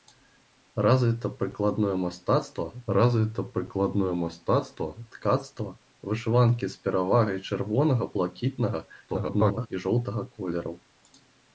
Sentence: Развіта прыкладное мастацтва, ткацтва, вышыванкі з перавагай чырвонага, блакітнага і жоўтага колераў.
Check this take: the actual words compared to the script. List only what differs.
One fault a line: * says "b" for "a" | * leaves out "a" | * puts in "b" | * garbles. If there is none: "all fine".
* puts in "развіта прыкладное мастацтва"
* garbles